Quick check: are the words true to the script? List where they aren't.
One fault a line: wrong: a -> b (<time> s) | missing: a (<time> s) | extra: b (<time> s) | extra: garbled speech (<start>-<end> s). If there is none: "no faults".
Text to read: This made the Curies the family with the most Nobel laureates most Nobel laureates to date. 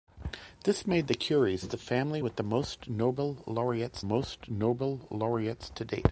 no faults